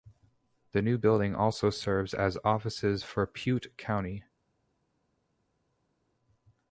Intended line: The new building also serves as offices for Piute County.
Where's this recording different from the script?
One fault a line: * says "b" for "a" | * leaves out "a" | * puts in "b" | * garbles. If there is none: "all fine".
all fine